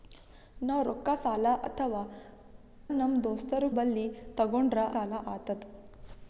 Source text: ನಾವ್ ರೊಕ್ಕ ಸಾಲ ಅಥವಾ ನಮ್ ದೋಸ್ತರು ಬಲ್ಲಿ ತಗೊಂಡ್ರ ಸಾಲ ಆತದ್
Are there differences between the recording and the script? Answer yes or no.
no